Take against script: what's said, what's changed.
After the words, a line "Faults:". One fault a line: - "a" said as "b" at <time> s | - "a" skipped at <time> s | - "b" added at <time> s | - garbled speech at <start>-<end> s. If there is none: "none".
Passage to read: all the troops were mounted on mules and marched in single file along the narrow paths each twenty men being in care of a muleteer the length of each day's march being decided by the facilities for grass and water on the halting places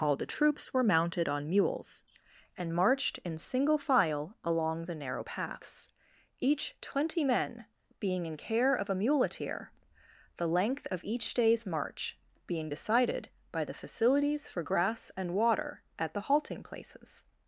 all the troops were mounted on mules and marched in single file along the narrow paths each twenty men being in care of a muleteer the length of each day's march being decided by the facilities for grass and water at the halting places
Faults:
- "on" said as "at" at 16.0 s